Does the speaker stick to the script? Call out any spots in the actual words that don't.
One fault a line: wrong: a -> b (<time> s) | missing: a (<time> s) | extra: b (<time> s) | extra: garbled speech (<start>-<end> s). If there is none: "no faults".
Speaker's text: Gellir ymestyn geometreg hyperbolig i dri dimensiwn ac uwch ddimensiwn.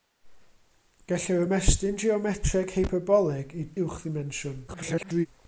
missing: dri dimensiwn ac (3.7 s)
extra: garbled speech (4.7-5.3 s)